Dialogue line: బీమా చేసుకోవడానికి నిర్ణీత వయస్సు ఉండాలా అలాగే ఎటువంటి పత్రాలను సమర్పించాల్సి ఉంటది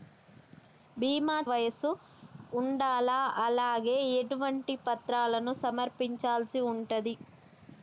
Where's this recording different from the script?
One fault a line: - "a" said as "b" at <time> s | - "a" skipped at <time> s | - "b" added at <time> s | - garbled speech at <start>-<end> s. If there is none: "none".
- "చేసుకోవడానికి నిర్ణీత" skipped at 1.4 s